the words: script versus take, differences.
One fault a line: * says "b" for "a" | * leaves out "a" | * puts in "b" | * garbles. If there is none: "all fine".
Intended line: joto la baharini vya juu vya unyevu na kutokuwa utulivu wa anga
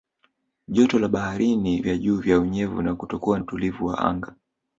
all fine